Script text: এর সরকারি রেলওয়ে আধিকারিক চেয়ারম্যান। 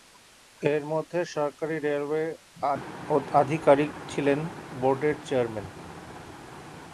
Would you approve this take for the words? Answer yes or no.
no